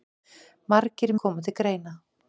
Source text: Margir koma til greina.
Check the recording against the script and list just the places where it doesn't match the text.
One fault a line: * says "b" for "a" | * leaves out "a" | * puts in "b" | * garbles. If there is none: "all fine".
all fine